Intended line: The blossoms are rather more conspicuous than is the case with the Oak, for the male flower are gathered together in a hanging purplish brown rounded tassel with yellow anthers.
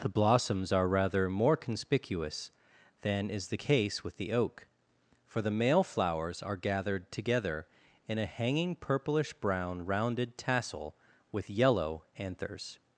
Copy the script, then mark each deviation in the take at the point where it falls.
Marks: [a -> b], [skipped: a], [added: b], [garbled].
The blossoms are rather more conspicuous than is the case with the Oak, for the male [flower -> flowers] are gathered together in a hanging purplish brown rounded tassel with yellow anthers.